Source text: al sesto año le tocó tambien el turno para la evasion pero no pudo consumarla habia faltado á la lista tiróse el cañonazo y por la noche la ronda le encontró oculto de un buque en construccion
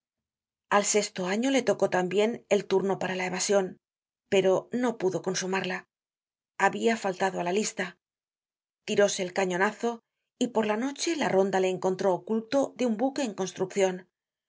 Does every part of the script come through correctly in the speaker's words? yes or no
yes